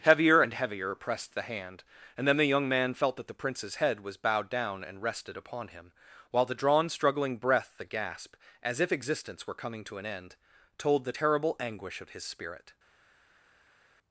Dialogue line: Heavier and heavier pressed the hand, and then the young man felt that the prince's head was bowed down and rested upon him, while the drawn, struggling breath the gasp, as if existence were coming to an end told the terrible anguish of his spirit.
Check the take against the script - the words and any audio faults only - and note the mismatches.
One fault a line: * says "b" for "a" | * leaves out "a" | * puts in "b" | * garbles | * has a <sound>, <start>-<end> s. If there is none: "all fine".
all fine